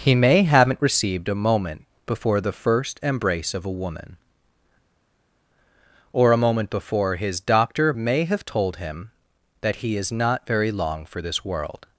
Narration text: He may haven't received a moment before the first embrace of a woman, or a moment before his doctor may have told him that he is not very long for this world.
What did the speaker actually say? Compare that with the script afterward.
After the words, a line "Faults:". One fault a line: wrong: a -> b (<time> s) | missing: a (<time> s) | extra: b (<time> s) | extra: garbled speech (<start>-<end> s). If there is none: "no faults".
He may haven't received a moment before the first embrace of a woman, or a moment before his doctor may have told him that he is not very long for this world.
Faults:
no faults